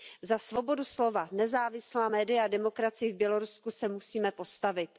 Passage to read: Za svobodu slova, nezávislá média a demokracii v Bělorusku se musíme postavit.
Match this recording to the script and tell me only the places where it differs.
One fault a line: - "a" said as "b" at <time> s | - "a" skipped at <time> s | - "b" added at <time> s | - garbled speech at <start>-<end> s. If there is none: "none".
none